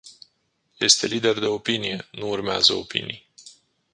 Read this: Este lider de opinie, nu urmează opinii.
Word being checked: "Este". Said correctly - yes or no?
yes